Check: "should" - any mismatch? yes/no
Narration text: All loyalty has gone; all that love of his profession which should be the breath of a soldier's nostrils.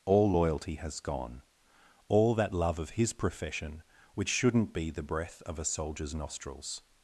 yes